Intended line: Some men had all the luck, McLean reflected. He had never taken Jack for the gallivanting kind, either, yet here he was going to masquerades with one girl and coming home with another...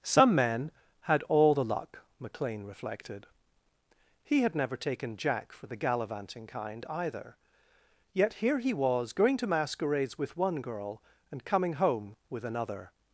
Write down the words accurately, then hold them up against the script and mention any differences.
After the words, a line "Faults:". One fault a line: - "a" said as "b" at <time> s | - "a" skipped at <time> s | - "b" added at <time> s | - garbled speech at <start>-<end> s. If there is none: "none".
Some men had all the luck, McLean reflected. He had never taken Jack for the gallivanting kind, either, yet here he was going to masquerades with one girl and coming home with another...
Faults:
none